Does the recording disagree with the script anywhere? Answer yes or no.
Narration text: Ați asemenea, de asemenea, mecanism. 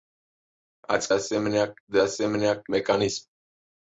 no